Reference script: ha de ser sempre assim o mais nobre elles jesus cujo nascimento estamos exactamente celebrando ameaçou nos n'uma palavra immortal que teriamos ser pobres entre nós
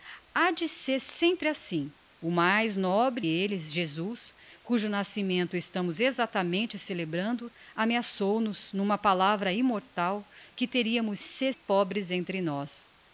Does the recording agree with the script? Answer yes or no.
yes